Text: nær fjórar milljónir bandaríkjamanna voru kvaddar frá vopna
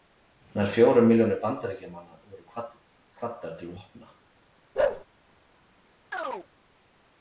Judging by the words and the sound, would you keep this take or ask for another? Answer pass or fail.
fail